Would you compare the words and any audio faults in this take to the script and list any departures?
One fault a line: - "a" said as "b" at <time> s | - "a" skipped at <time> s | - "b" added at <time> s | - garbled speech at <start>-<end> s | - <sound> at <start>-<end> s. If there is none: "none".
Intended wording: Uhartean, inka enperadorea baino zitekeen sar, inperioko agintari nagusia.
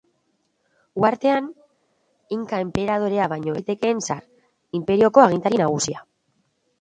none